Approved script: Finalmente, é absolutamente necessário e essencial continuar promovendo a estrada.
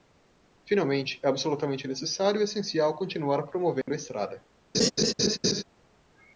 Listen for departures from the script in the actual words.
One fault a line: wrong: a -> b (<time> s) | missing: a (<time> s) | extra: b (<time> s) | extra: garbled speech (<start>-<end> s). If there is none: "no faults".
no faults